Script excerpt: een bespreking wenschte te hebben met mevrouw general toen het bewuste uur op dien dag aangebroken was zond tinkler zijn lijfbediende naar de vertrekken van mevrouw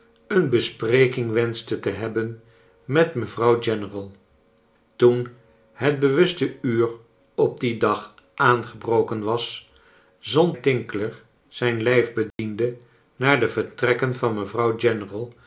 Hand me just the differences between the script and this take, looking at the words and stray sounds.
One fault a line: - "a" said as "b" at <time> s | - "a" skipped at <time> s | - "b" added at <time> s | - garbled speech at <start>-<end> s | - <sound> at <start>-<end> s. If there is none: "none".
- dropout at 12.3-12.4 s